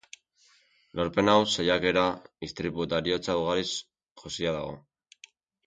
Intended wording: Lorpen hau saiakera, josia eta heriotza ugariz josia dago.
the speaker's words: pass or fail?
fail